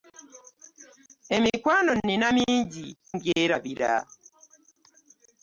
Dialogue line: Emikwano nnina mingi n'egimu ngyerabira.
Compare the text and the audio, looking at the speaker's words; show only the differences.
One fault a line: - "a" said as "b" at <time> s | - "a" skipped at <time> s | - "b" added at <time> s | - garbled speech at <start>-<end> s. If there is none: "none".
- "n'egimu" skipped at 2.9 s